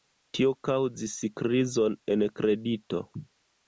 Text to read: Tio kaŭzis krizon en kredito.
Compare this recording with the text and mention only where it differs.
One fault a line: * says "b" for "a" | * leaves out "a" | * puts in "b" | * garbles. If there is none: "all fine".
all fine